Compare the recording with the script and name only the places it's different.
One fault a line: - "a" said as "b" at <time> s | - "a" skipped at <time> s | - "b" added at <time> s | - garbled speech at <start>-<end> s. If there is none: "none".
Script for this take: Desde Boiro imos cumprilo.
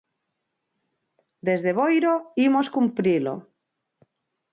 none